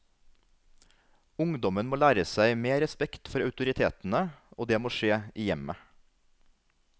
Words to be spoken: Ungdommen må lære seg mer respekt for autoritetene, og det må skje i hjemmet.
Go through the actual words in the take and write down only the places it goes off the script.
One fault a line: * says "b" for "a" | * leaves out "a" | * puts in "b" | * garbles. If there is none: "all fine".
all fine